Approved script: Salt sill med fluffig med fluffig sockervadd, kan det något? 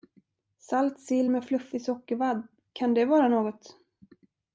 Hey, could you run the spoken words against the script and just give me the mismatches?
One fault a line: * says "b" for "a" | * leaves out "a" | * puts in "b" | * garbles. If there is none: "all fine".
* leaves out "med fluffig"
* puts in "vara"